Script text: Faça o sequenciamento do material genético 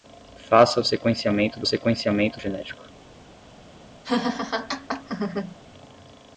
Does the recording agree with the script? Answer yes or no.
no